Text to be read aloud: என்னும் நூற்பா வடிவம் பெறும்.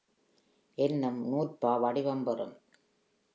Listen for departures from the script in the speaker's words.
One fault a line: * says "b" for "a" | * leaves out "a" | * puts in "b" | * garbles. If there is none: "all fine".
all fine